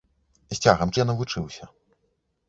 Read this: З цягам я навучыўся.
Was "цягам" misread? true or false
false